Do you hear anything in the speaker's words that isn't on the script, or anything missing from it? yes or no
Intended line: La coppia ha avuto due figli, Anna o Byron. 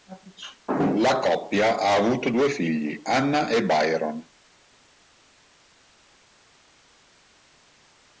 yes